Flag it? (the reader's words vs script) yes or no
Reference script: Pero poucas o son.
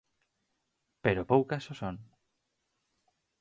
no